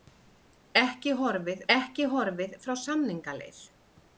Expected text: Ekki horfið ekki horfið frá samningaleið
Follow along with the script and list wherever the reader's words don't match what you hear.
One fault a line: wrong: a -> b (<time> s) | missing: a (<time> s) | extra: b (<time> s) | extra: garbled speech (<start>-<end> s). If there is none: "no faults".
no faults